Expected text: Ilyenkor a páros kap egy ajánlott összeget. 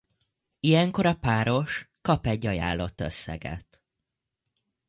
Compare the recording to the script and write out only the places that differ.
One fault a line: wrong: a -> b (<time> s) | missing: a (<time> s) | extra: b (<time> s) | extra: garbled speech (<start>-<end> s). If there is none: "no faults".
no faults